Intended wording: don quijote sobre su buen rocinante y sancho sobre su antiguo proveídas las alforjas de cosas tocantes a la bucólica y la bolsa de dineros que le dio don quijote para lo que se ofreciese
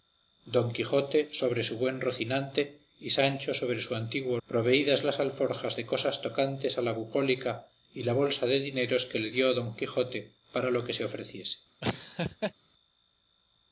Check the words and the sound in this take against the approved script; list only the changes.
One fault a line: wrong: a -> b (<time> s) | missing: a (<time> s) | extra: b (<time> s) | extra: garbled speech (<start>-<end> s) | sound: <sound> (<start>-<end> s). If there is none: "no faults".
sound: laugh (11.8-12.5 s)